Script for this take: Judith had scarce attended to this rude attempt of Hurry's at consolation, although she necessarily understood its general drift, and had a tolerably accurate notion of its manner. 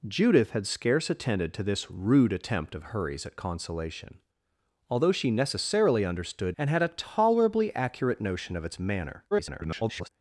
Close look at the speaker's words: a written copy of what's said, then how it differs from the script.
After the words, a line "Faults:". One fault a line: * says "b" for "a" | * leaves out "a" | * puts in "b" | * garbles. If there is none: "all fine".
Judith had scarce attended to this rude attempt of Hurry's at consolation, although she necessarily understood and had a tolerably accurate notion of its manner. [garbled]
Faults:
* leaves out "its general drift"
* garbles